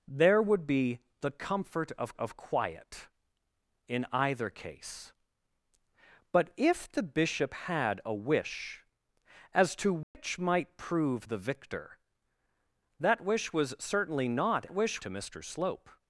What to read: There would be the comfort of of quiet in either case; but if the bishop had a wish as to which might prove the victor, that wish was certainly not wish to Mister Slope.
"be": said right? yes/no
yes